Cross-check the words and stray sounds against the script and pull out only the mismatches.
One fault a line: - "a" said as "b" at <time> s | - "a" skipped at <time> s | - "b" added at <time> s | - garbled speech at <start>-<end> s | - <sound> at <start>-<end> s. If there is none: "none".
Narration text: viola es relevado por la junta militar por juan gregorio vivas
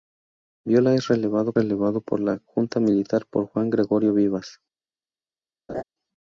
- "relevado" added at 1.6 s
- laugh at 5.7-5.8 s